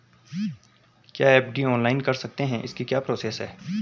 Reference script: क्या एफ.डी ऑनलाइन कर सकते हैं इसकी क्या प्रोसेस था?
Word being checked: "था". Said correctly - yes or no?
no